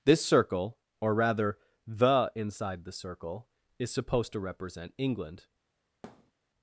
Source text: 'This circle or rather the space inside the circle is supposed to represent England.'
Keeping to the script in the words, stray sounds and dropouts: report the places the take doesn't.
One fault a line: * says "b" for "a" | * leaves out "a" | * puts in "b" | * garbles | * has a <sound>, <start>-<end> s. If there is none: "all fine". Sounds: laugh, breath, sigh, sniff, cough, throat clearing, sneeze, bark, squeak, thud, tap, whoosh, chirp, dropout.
* leaves out "space"
* has a thud, 6.0-6.3 s